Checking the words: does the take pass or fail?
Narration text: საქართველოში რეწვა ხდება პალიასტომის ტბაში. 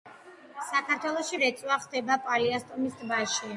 pass